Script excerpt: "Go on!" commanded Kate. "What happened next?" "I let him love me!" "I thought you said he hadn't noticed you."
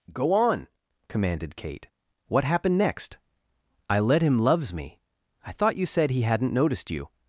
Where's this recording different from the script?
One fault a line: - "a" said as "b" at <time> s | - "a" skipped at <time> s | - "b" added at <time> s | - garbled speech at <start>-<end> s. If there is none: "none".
- "love" said as "loves" at 4.4 s